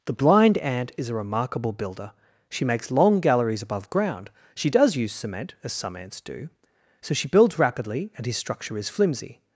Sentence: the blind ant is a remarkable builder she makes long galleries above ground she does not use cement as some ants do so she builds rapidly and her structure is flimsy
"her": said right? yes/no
no